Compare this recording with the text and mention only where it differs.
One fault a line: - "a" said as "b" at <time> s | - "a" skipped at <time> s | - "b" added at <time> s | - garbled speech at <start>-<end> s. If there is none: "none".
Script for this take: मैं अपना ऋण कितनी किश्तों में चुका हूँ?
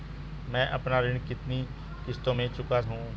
none